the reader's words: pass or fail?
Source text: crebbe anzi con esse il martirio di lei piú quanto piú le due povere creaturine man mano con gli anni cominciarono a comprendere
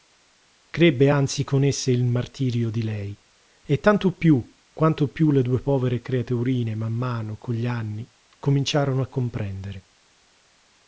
fail